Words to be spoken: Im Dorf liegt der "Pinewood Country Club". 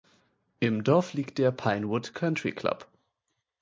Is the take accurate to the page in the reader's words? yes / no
yes